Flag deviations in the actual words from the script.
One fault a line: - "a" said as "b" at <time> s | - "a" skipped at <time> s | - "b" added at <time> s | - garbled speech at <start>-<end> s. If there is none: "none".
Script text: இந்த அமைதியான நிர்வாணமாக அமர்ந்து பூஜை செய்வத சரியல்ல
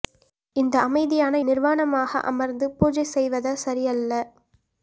none